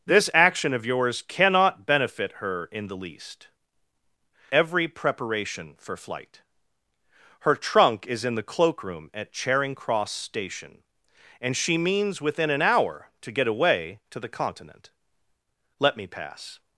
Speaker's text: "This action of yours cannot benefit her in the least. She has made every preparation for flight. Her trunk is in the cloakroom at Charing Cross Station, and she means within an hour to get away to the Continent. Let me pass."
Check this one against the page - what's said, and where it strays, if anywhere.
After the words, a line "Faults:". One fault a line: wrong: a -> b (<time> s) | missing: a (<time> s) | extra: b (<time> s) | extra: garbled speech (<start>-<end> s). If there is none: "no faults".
"This action of yours cannot benefit her in the least. Every preparation for flight. Her trunk is in the cloakroom at Charing Cross Station, and she means within an hour to get away to the Continent. Let me pass."
Faults:
missing: She has made (3.5 s)